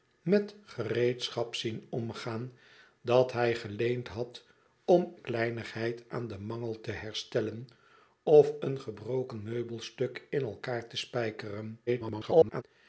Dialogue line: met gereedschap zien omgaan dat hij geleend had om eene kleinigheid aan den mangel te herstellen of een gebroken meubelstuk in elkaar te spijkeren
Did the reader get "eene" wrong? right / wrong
wrong